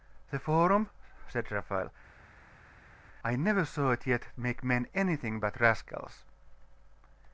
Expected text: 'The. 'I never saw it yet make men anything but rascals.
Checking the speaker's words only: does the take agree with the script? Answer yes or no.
no